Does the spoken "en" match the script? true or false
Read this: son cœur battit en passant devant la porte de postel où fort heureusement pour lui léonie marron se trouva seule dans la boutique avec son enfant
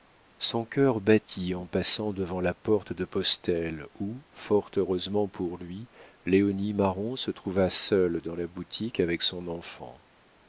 true